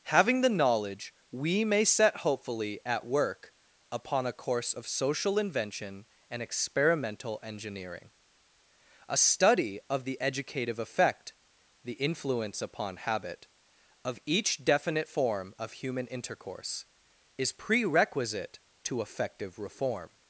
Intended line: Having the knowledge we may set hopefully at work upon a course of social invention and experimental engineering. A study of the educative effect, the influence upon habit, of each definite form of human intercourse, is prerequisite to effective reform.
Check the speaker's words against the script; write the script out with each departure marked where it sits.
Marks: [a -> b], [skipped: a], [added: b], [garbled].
Having the knowledge we may set hopefully at work upon a course of social invention and experimental engineering. A study of the educative effect, the influence upon habit, of each definite form of human intercourse, is prerequisite to effective reform.